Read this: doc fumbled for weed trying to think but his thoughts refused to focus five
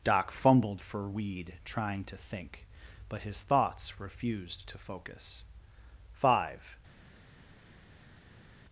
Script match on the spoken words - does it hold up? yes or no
yes